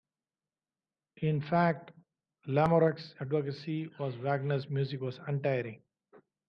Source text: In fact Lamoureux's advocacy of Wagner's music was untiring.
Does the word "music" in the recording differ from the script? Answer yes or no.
no